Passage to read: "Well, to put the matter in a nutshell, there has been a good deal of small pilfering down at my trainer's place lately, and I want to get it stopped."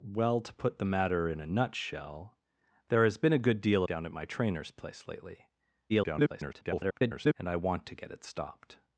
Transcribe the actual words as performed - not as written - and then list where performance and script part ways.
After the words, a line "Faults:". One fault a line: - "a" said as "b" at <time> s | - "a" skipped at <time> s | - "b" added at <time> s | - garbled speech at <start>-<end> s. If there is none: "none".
"Well, to put the matter in a nutshell, there has been a good deal down at my trainer's place lately, [garbled] and I want to get it stopped."
Faults:
- "of small pilfering" skipped at 3.8 s
- garbled speech at 5.9-7.3 s